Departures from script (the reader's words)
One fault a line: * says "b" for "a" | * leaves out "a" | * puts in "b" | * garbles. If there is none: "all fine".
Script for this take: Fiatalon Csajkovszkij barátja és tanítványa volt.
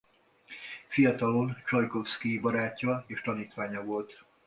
all fine